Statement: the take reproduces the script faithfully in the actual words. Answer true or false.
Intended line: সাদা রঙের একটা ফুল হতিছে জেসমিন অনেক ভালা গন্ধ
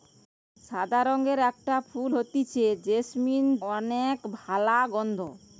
true